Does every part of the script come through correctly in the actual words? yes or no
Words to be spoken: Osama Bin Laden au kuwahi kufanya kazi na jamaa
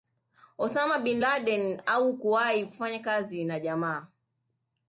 yes